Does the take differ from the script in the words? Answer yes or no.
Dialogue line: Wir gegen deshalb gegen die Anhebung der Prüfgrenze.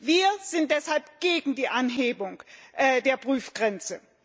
yes